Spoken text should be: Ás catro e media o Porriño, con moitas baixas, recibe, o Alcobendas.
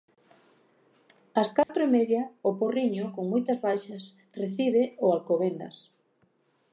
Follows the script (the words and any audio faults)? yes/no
no